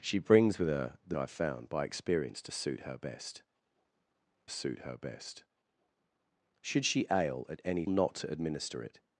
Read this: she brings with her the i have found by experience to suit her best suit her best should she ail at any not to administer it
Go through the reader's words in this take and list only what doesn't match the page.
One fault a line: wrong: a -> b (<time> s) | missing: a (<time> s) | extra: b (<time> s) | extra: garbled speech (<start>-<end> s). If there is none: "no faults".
no faults